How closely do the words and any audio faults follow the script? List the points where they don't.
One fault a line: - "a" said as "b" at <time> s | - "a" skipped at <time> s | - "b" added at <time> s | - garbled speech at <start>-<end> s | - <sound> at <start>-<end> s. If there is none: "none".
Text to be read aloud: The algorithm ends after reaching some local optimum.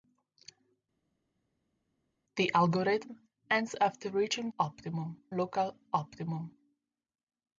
- "some" said as "optimum" at 4.6 s